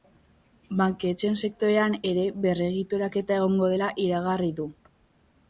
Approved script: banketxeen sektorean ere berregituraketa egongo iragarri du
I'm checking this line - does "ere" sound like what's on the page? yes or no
yes